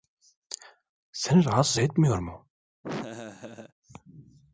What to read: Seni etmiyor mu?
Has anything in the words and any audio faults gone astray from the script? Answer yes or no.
yes